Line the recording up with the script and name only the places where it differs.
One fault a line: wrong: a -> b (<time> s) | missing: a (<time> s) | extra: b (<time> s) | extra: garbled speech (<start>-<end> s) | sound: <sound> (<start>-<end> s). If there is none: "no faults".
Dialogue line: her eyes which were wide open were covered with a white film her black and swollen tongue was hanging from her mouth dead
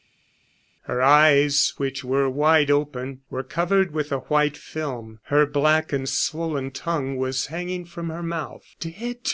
no faults